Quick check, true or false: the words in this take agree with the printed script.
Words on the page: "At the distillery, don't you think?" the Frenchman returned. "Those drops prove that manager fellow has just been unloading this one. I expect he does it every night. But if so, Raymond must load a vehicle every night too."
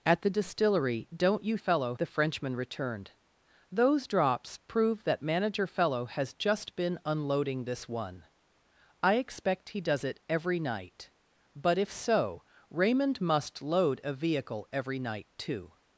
false